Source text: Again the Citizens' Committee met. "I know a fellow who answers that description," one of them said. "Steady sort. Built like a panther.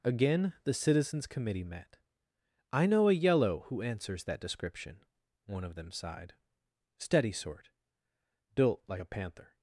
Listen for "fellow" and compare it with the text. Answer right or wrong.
wrong